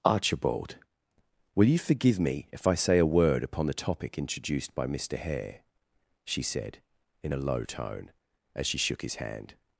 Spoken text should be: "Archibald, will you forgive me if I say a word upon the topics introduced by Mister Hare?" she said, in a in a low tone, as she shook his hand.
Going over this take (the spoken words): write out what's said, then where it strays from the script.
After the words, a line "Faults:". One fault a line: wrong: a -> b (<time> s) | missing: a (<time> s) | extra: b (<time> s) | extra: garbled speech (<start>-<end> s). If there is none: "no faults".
"Archibald, will you forgive me if I say a word upon the topic introduced by Mister Hare?" she said, in a low tone, as she shook his hand.
Faults:
wrong: topics -> topic (3.7 s)
missing: in a (7.4 s)